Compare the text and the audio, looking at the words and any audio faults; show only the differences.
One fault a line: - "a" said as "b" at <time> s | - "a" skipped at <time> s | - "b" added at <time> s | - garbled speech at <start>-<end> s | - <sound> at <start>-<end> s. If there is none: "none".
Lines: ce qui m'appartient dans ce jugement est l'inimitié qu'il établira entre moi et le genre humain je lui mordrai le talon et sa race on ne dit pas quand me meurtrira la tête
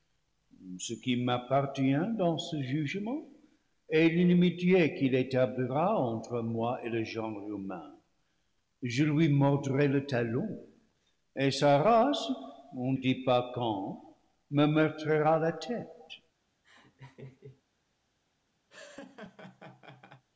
- "ne" skipped at 12.9 s
- laugh at 16.6-17.6 s
- laugh at 18.7-20.3 s